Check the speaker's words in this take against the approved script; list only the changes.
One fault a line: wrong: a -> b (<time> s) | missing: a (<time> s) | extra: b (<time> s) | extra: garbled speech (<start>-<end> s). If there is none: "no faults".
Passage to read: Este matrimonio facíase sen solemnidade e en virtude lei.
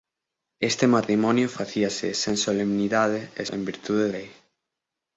no faults